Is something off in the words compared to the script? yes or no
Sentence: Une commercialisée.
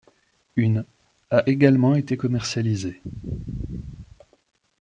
yes